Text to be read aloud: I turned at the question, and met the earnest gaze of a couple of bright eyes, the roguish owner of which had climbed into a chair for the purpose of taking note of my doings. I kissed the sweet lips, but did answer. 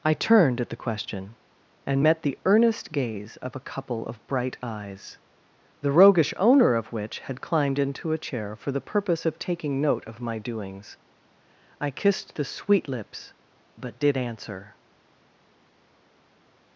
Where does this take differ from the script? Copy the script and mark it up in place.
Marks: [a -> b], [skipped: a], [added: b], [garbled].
I turned at the question, and met the earnest gaze of a couple of bright eyes, the roguish owner of which had climbed into a chair for the purpose of taking note of my doings. I kissed the sweet lips, but did answer.